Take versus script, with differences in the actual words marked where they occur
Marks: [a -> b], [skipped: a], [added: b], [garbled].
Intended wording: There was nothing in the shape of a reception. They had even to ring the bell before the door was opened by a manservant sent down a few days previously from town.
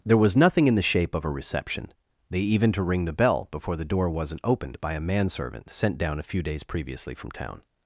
There was nothing in the shape of a reception. They [skipped: had] even to ring the bell before the door [was -> wasn't] opened by a manservant sent down a few days previously from town.